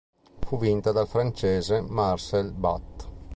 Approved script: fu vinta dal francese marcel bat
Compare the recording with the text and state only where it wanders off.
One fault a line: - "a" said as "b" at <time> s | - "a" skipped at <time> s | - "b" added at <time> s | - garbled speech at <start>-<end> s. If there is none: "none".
none